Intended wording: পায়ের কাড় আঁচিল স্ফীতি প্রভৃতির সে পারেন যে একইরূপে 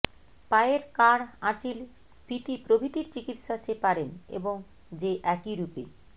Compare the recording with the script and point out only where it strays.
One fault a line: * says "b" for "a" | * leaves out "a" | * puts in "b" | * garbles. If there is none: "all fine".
* puts in "চিকিত্সা"
* puts in "এবং"